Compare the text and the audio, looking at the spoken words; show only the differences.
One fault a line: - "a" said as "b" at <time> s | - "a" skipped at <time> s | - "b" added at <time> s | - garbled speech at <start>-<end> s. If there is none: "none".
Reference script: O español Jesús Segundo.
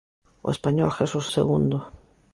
none